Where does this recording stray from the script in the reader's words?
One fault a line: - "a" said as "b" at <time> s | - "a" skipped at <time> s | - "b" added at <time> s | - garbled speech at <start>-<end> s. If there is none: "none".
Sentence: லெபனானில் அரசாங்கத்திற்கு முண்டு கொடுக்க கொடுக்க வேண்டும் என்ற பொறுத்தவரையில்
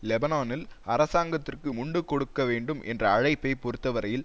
- "கொடுக்க" skipped at 2.4 s
- "அழைப்பை" added at 3.1 s